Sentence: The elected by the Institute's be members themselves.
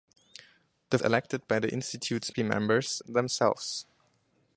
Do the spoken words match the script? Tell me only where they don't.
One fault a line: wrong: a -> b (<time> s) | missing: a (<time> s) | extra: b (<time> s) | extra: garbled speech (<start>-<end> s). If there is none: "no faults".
no faults